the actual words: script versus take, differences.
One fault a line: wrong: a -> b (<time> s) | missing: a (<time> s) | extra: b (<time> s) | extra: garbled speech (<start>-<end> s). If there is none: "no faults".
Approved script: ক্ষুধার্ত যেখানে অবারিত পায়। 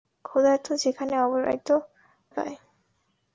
no faults